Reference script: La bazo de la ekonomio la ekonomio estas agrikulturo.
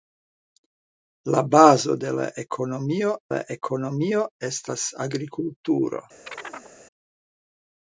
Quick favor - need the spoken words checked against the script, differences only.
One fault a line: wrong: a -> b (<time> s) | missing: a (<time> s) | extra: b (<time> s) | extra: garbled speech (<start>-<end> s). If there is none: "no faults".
no faults